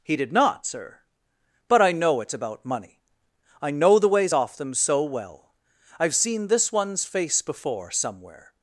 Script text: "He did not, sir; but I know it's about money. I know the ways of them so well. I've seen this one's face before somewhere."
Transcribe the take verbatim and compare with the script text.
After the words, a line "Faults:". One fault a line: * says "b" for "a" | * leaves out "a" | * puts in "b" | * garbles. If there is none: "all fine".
"He did not, sir; but I know it's about money. I know the ways off them so well. I've seen this one's face before somewhere."
Faults:
* says "off" for "of"